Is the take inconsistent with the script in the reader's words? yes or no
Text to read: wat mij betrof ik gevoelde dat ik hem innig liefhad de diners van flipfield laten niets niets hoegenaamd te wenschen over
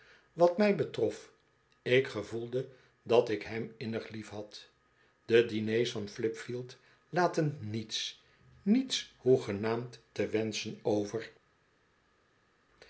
no